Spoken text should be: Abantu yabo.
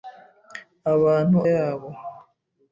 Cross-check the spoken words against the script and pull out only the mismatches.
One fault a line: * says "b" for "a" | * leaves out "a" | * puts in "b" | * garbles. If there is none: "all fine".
all fine